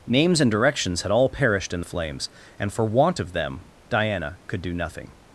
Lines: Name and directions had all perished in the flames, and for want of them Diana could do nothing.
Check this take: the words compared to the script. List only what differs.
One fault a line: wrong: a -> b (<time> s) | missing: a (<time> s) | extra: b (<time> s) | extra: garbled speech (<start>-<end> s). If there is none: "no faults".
wrong: Name -> Names (0.1 s)